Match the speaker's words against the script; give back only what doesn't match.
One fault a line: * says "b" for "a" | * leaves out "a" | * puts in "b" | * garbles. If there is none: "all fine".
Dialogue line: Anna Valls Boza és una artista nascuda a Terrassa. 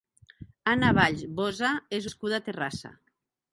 * leaves out "una artista"